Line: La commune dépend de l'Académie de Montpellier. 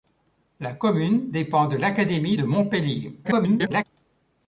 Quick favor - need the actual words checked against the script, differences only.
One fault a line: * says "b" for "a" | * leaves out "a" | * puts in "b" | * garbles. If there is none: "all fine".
* garbles